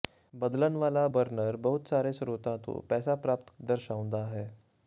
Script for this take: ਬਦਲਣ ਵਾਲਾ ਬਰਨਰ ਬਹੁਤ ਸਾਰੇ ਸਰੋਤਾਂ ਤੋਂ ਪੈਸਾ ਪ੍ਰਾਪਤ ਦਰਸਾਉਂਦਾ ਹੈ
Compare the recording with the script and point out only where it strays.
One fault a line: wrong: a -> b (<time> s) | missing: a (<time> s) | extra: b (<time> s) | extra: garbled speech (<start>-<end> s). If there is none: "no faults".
no faults